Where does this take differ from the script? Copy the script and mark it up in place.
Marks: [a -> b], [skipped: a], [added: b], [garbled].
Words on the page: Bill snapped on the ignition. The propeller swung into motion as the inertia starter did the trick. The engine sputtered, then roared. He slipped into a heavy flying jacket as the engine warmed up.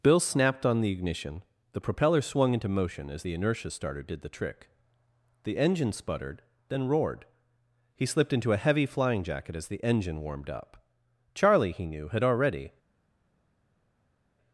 Bill snapped on the ignition. The propeller swung into motion as the inertia starter did the trick. The engine sputtered, then roared. He slipped into a heavy flying jacket as the engine warmed up. [added: Charlie he knew had already]